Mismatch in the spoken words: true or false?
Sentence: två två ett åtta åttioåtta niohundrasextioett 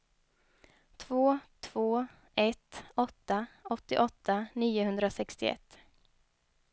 false